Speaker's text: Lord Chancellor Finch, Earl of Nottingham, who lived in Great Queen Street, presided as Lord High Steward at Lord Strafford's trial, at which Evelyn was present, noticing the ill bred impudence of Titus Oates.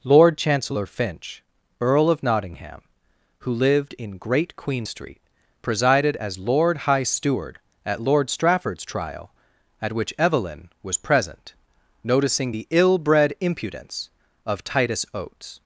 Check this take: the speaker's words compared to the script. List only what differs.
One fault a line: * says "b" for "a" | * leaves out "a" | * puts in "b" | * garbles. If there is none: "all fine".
all fine